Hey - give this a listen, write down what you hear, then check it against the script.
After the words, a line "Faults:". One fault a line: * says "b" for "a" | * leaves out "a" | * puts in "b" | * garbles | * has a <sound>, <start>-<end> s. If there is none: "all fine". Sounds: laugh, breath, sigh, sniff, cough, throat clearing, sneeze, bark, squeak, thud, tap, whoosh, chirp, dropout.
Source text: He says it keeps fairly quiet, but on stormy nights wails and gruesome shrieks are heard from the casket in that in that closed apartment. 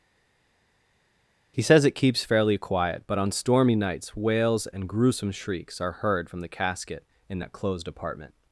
He says it keeps fairly quiet, but on stormy nights wails and gruesome shrieks are heard from the casket in that closed apartment.
Faults:
* leaves out "in that"